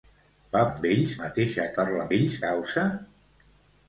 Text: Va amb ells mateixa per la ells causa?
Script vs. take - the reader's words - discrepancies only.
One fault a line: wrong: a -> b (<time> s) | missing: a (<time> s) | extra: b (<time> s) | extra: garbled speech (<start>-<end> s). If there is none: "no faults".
no faults